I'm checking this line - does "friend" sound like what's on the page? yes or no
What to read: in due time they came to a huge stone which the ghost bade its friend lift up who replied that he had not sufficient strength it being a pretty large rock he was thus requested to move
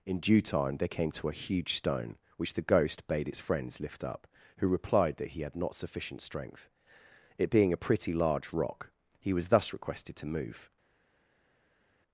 no